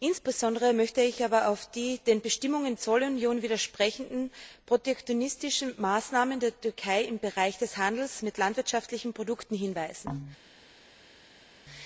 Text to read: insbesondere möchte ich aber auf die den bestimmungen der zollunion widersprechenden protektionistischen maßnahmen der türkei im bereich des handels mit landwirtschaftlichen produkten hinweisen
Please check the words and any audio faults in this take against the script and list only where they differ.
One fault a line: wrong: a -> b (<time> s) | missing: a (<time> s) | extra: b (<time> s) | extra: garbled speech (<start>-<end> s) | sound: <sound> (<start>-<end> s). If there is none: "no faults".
missing: der (2.7 s)